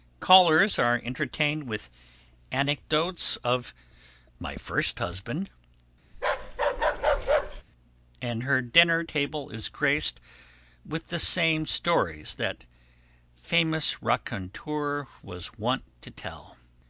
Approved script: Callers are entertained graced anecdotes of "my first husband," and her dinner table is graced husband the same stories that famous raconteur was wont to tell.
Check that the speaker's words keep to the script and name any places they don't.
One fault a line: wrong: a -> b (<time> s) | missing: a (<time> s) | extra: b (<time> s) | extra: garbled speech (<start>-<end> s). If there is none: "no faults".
wrong: graced -> with (1.7 s)
wrong: husband -> with (10.8 s)